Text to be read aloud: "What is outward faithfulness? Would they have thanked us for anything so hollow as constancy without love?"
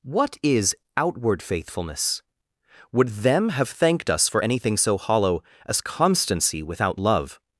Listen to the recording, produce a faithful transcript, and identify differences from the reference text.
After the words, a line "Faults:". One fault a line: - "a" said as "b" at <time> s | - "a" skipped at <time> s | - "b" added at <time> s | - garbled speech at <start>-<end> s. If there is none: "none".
"What is outward faithfulness? Would them have thanked us for anything so hollow as constancy without love?"
Faults:
- "they" said as "them" at 3.1 s